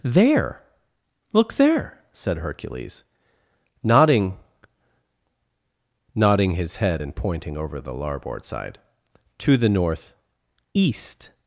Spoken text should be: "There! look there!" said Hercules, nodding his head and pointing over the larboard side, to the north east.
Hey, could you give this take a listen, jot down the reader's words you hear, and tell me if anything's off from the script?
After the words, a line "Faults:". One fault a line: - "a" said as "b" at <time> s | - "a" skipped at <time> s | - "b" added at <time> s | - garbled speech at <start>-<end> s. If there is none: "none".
"There! look there!" said Hercules, nodding nodding his head and pointing over the larboard side, to the north east.
Faults:
- "nodding" added at 6.2 s